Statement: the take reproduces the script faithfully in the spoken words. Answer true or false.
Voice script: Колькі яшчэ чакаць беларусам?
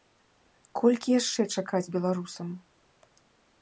true